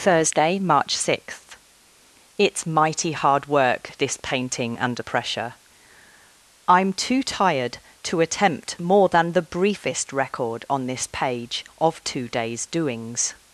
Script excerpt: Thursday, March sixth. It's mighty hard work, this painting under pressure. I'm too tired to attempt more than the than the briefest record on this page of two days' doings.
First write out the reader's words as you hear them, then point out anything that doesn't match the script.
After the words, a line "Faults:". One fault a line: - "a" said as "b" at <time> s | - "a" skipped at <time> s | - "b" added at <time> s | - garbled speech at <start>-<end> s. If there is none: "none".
Thursday, March sixth. It's mighty hard work, this painting under pressure. I'm too tired to attempt more than the briefest record on this page of two days' doings.
Faults:
- "than the" skipped at 9.4 s